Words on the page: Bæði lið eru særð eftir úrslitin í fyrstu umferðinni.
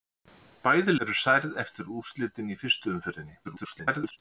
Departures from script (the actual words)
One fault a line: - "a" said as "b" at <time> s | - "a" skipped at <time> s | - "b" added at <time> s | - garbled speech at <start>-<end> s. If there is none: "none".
- "lið" skipped at 0.9 s
- garbled speech at 3.4-4.2 s